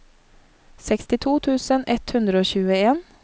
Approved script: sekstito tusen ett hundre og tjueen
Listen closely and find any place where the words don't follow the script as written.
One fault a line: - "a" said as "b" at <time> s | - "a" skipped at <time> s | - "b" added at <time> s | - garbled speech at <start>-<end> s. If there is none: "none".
none